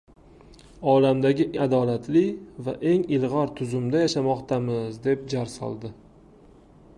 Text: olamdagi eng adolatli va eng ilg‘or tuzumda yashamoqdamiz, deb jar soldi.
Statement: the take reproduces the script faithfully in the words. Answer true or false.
false